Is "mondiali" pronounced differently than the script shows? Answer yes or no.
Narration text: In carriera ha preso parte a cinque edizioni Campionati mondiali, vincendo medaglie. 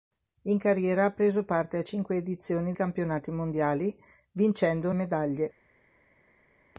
no